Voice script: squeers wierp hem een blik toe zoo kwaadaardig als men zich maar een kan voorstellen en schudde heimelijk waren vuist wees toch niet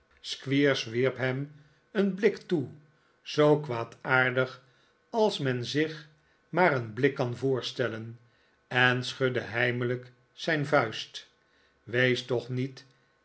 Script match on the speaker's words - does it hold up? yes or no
no